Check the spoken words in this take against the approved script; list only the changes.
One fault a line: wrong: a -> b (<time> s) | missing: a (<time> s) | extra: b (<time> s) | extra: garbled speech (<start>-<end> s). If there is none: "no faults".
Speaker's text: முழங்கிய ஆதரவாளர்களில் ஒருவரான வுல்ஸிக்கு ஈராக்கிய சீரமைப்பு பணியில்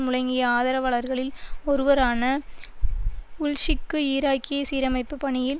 no faults